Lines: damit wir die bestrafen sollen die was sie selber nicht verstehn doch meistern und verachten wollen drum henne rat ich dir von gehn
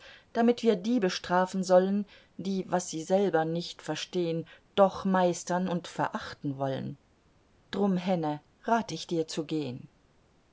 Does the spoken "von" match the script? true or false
false